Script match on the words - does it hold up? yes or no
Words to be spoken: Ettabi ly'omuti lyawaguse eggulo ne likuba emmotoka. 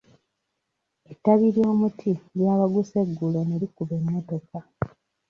yes